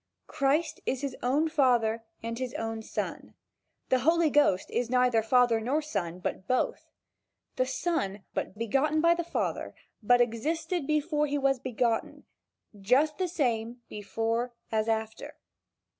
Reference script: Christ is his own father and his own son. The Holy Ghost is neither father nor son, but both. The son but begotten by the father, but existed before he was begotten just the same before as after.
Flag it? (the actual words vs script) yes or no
no